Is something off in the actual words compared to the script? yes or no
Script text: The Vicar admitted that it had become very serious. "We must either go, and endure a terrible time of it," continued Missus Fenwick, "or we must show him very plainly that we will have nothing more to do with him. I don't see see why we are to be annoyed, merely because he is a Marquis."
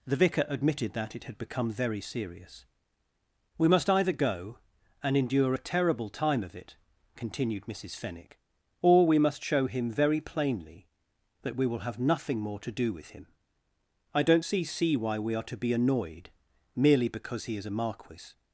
no